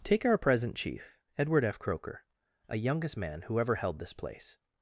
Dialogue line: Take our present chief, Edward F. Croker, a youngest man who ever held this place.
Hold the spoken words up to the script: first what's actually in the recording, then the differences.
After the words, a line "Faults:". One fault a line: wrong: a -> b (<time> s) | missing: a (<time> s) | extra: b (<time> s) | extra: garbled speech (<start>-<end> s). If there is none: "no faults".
Take our present chief, Edward F. Croker, a youngest man who ever held this place.
Faults:
no faults